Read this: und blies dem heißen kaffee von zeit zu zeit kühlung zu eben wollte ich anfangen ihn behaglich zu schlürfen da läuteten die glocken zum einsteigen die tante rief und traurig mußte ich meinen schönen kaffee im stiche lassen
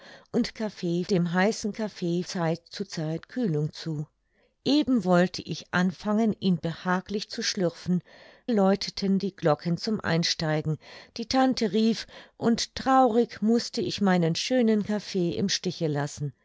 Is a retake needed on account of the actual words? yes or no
yes